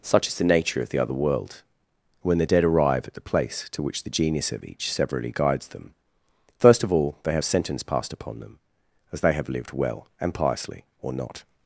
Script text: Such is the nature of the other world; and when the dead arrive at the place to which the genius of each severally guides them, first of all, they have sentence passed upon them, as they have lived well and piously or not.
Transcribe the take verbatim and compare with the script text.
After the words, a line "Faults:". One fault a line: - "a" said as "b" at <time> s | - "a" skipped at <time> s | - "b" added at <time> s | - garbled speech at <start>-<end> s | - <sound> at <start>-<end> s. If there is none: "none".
Such is the nature of the other world; when the dead arrive at the place to which the genius of each severally guides them, first of all, they have sentence passed upon them, as they have lived well and piously or not.
Faults:
- "and" skipped at 1.6 s